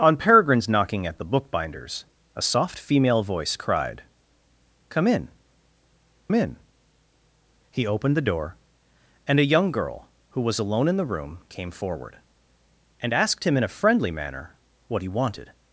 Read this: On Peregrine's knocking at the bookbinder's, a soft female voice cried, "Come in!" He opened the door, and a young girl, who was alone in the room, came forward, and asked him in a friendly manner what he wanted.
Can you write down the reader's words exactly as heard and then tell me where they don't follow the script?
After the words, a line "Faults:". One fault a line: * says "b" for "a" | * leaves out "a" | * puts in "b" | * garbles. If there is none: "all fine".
On Peregrine's knocking at the bookbinder's, a soft female voice cried, "Come in in!" He opened the door, and a young girl, who was alone in the room, came forward, and asked him in a friendly manner what he wanted.
Faults:
* puts in "in"